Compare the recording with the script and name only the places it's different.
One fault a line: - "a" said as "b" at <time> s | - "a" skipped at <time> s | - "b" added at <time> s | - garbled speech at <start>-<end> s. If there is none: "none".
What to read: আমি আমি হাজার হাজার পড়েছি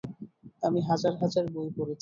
- "আমি" said as "হাজার" at 0.9 s
- "হাজার" said as "বই" at 1.5 s